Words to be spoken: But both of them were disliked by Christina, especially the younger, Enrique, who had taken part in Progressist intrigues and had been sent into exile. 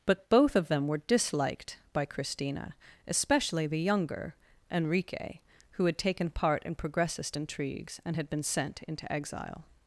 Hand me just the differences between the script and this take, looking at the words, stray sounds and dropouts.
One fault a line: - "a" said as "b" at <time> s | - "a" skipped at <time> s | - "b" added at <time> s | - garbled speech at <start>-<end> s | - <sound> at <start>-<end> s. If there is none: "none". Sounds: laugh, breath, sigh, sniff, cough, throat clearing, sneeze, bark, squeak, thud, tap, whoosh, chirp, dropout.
none